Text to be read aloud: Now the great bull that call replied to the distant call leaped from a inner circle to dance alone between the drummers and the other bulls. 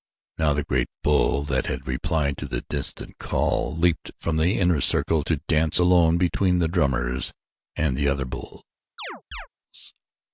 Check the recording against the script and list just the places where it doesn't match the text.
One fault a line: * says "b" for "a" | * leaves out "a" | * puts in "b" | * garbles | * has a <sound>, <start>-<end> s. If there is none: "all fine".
* says "had" for "call"
* says "the" for "a"
* has a chirp, 9.0-9.5 s